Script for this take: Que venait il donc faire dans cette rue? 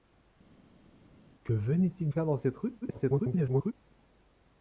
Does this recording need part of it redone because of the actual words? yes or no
yes